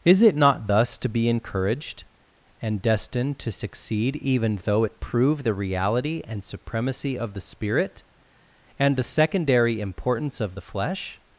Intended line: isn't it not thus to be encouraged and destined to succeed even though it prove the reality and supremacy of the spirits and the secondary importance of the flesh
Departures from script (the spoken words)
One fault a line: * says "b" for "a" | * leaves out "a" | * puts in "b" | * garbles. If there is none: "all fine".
* says "is" for "isn't"
* says "spirit" for "spirits"